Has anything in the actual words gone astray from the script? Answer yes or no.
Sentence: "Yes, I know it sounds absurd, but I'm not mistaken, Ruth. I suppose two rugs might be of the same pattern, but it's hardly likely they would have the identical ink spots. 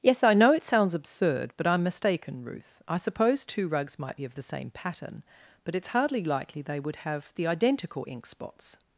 yes